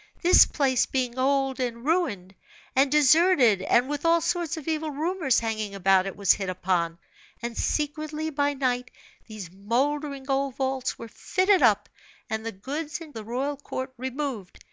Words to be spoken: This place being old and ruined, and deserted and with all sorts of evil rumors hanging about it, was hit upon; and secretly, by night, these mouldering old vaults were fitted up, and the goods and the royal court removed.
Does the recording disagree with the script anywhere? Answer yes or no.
no